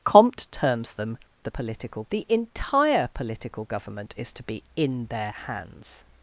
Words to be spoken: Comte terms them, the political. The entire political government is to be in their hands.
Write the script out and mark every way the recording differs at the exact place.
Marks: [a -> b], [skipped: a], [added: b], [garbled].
Comte terms them, the political. The entire political government is to be in their hands.